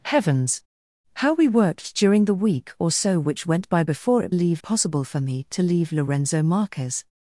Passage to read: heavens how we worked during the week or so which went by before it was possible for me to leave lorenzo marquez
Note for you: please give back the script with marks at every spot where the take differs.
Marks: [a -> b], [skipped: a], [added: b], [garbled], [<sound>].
heavens how we worked during the week or so which went by before it [was -> leave] possible for me to leave lorenzo marquez